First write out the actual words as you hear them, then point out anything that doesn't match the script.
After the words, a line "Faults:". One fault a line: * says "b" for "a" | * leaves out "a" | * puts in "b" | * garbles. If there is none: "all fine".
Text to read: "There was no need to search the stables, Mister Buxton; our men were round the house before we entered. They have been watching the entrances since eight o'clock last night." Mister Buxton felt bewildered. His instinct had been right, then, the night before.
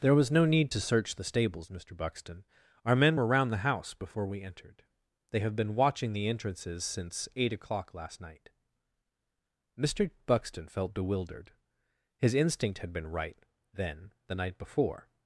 "There was no need to search the stables, Mister Buxton; our men were round the house before we entered. They have been watching the entrances since eight o'clock last night." Mister Buxton felt bewildered. His instinct had been right, then, the night before.
Faults:
all fine